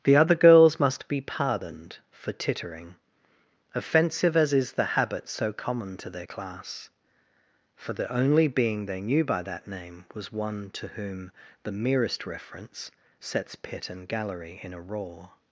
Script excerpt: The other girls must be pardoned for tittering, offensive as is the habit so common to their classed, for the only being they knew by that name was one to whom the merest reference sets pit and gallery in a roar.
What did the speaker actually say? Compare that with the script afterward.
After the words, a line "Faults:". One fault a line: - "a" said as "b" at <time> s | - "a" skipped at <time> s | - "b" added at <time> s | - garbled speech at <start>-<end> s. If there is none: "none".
The other girls must be pardoned for tittering, offensive as is the habit so common to their class, for the only being they knew by that name was one to whom the merest reference sets pit and gallery in a roar.
Faults:
- "classed" said as "class" at 6.2 s